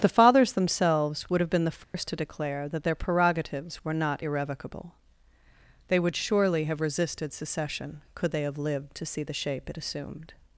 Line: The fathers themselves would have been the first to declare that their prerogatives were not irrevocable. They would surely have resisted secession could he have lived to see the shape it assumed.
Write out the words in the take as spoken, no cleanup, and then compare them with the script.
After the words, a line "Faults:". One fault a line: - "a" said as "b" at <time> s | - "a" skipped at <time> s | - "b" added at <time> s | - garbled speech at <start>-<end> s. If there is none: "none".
The fathers themselves would have been the first to declare that their prerogatives were not irrevocable. They would surely have resisted secession could they have lived to see the shape it assumed.
Faults:
- "he" said as "they" at 8.3 s